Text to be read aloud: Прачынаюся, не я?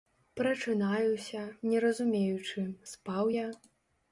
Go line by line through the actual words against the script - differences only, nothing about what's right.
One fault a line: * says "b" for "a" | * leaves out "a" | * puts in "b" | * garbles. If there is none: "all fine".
* puts in "разумеючы спаў"